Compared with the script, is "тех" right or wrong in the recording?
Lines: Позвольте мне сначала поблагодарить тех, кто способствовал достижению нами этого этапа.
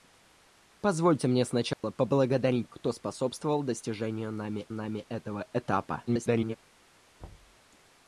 wrong